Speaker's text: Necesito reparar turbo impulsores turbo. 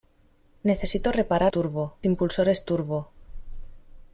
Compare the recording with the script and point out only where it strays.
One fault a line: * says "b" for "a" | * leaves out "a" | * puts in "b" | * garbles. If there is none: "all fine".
all fine